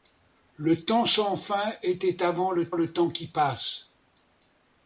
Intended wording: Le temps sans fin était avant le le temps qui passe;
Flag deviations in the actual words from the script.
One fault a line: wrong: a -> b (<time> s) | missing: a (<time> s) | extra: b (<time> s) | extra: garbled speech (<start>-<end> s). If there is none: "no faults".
no faults